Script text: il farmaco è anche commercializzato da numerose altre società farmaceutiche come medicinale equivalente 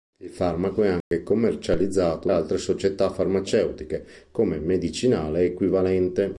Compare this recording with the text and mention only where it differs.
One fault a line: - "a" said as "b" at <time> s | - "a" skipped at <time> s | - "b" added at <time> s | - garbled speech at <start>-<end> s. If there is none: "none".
- "da numerose" skipped at 2.3 s